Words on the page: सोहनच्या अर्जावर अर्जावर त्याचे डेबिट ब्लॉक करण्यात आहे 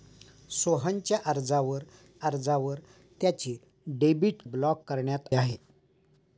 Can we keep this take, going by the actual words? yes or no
yes